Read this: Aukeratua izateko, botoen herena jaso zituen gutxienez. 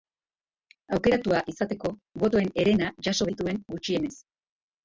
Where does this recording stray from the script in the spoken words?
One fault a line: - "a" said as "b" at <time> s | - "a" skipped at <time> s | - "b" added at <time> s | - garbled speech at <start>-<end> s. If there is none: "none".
none